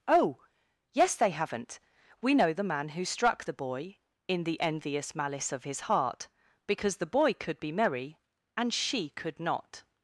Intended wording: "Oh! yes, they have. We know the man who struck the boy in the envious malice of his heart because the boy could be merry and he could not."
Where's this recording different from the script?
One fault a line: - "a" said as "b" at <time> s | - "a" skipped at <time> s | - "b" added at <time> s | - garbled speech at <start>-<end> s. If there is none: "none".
- "have" said as "haven't" at 1.3 s
- "he" said as "she" at 8.7 s